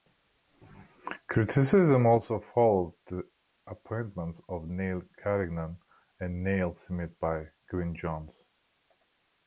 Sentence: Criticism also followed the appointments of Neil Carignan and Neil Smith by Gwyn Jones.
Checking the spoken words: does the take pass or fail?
pass